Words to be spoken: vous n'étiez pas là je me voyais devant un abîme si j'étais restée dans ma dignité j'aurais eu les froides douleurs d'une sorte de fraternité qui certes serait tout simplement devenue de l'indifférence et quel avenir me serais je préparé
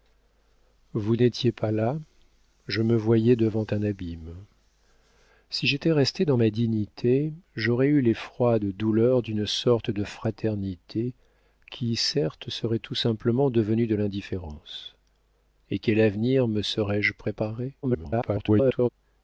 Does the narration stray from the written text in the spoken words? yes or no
yes